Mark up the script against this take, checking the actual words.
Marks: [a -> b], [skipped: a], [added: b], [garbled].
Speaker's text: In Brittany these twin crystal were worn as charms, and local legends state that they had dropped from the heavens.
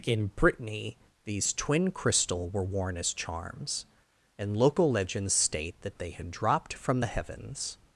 In Brittany these twin crystal were worn as charms, and local legends state that they had dropped from the heavens.